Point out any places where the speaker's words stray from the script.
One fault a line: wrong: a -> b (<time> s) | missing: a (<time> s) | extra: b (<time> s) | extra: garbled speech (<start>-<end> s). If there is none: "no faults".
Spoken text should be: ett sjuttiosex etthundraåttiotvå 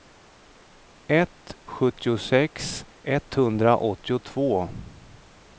no faults